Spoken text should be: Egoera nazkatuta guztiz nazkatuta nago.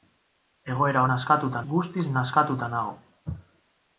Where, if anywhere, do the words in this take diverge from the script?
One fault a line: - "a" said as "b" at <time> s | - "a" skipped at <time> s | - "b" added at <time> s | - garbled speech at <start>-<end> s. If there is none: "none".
none